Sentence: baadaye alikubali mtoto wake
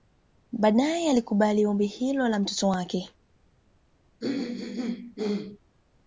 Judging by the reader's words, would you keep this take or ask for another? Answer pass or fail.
fail